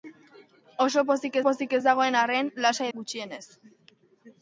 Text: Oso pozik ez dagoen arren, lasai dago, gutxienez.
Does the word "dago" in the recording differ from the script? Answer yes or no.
yes